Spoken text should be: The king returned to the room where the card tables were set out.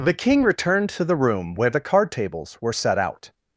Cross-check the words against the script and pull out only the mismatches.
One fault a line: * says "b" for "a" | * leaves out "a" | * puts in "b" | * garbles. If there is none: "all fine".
all fine